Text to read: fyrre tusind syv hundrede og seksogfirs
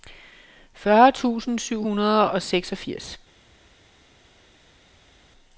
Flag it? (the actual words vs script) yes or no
no